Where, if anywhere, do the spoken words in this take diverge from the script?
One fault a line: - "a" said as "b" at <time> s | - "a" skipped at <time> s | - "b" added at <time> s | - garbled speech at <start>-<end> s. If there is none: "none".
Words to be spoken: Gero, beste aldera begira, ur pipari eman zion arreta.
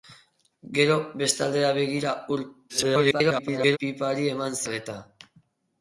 - garbled speech at 2.7-3.8 s
- "zion" skipped at 4.6 s